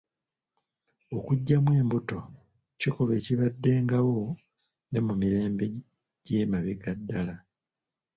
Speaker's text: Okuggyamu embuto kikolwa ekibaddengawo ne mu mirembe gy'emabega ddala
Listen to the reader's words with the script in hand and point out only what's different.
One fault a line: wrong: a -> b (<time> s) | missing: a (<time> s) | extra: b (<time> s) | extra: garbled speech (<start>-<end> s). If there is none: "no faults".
no faults